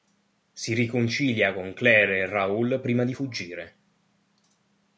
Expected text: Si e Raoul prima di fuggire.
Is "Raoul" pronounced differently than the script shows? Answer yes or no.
no